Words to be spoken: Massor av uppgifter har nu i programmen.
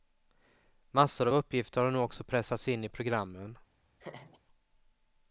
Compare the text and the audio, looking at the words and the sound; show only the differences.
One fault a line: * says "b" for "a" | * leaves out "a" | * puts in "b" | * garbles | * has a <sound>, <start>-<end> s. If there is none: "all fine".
* puts in "också pressats in"
* has a laugh, 4.0-4.4 s